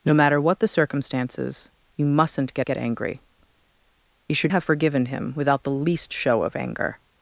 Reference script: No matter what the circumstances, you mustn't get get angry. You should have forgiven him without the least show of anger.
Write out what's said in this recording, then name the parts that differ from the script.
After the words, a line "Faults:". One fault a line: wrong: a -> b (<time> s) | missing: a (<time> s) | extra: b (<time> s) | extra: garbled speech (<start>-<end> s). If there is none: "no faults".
No matter what the circumstances, you mustn't get get angry. You should have forgiven him without the least show of anger.
Faults:
no faults